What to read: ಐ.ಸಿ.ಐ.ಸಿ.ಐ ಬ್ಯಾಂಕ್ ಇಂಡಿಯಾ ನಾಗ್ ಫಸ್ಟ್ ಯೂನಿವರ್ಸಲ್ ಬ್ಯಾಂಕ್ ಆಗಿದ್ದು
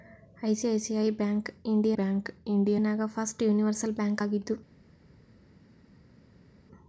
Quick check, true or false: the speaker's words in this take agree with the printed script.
false